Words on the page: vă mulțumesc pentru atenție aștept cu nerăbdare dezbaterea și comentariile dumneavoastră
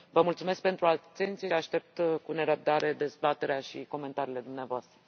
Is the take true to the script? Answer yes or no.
yes